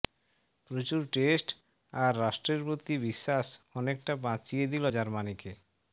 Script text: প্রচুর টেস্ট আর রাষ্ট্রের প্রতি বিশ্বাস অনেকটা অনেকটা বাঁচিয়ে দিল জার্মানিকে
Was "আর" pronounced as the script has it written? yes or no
yes